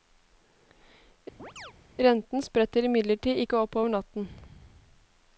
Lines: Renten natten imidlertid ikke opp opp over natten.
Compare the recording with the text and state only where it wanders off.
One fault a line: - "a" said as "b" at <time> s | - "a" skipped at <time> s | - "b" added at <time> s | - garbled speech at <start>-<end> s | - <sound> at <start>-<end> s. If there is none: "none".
- chirp at 1.4-1.7 s
- "natten" said as "spretter" at 2.5 s
- "opp" skipped at 3.8 s